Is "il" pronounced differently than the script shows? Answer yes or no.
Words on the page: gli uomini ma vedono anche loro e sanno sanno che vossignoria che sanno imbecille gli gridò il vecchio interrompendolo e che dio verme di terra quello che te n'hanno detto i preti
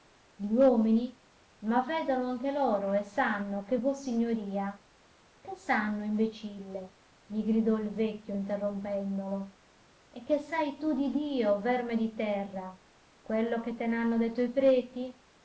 no